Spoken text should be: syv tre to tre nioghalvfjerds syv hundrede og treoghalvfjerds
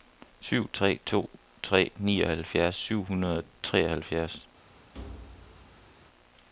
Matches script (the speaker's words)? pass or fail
pass